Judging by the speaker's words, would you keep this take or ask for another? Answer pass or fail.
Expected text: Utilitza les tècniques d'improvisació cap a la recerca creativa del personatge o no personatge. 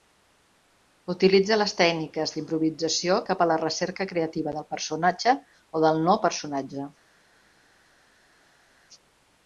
fail